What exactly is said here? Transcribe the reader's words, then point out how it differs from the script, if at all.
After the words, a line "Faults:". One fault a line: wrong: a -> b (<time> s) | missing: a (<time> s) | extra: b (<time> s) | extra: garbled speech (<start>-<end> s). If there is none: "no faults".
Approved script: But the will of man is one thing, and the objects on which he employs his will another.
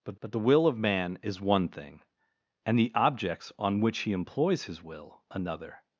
But but the will of man is one thing, and the objects on which he employs his will another.
Faults:
extra: but (0.2 s)